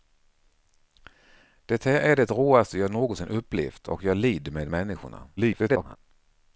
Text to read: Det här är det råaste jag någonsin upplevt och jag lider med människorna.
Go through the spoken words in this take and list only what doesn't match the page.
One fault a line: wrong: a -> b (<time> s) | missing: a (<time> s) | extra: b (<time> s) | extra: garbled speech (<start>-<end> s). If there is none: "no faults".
extra: garbled speech (5.4-6.0 s)